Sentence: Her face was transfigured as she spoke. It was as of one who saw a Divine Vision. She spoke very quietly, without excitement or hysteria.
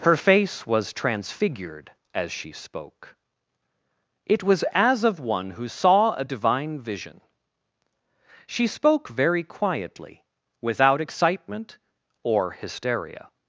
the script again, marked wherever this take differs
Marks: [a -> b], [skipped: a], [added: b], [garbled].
Her face was transfigured as she spoke. It was as of one who saw a Divine Vision. She spoke very quietly, without excitement or hysteria.